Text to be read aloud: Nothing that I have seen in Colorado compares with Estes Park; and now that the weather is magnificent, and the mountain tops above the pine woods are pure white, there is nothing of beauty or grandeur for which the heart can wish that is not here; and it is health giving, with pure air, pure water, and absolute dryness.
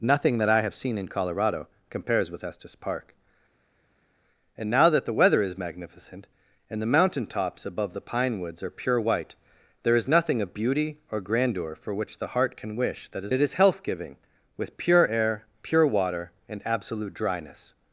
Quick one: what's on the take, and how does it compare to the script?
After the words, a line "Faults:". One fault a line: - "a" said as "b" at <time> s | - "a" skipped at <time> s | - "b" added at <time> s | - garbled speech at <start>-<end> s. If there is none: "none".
Nothing that I have seen in Colorado compares with Estes Park; and now that the weather is magnificent, and the mountain tops above the pine woods are pure white, there is nothing of beauty or grandeur for which the heart can wish that is it is health giving, with pure air, pure water, and absolute dryness.
Faults:
- "not here and" skipped at 13.3 s